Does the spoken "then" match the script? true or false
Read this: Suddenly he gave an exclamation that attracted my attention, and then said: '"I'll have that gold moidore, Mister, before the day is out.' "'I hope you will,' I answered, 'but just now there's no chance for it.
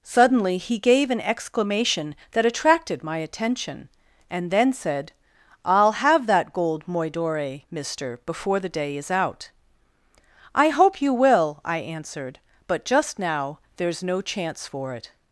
true